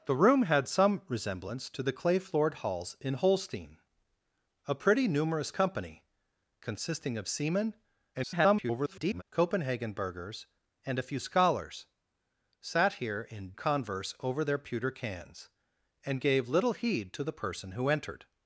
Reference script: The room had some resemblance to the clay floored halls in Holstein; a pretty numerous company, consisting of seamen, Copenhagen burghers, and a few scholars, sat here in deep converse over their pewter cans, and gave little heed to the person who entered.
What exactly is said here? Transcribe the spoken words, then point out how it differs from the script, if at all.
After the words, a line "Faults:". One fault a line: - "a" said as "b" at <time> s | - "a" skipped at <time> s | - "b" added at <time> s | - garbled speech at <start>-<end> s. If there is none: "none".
The room had some resemblance to the clay floored halls in Holstein; a pretty numerous company, consisting of seamen, [garbled] Copenhagen burghers, and a few scholars, sat here in converse over their pewter cans, and gave little heed to the person who entered.
Faults:
- garbled speech at 8.1-9.2 s
- "deep" skipped at 13.5 s